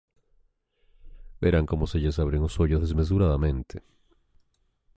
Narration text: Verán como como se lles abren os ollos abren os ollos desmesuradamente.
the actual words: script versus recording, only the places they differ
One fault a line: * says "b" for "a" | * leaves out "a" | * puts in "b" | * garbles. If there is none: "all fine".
* leaves out "como"
* leaves out "abren os ollos"